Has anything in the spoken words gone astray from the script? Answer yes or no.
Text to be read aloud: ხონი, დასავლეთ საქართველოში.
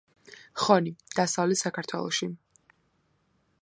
no